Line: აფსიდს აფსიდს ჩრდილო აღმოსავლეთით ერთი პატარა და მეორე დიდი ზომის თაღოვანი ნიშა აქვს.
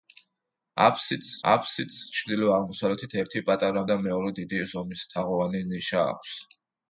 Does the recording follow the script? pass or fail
pass